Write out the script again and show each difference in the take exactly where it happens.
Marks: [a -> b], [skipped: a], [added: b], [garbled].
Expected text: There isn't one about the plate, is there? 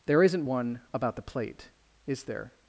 There isn't one about the plate, is there?